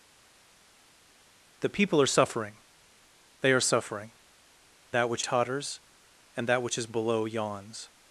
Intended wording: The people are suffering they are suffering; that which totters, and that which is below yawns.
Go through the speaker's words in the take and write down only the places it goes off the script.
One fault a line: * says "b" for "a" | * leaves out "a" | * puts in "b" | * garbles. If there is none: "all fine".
all fine